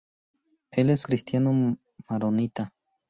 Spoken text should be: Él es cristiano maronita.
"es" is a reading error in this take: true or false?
false